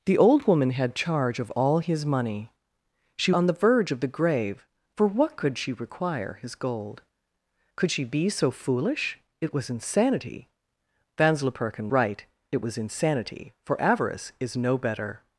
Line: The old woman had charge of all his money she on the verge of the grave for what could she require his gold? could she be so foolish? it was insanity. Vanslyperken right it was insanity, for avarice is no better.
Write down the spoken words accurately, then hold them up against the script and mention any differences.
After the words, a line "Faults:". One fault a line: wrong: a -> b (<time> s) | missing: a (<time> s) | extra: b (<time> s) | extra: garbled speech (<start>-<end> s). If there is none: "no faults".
The old woman had charge of all his money she on the verge of the grave for what could she require his gold? could she be so foolish? it was insanity. Vanslyperken right it was insanity, for avarice is no better.
Faults:
no faults